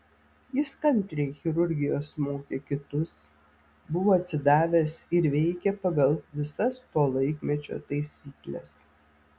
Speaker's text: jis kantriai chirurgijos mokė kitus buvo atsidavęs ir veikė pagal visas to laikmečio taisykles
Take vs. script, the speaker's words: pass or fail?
pass